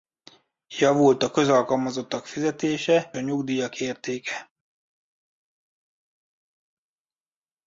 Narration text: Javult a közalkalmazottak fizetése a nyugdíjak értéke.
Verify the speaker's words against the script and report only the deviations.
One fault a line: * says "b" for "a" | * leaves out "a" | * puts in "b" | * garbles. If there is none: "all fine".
all fine